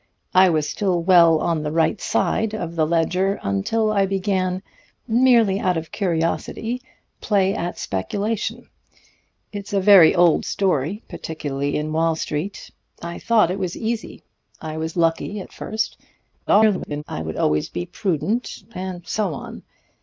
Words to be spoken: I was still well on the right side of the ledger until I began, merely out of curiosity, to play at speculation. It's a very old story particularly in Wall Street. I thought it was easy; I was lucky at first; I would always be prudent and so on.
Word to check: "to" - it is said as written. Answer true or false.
false